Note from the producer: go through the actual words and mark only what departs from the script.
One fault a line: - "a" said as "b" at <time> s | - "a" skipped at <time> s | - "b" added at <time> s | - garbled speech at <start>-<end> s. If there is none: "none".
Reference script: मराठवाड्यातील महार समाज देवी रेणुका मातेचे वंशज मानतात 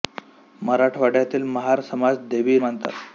- "रेणुका मातेचे वंशज" skipped at 2.6 s